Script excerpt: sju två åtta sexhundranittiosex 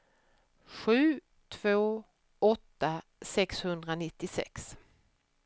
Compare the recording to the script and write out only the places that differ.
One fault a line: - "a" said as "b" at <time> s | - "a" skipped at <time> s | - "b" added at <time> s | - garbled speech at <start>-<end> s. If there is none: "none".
none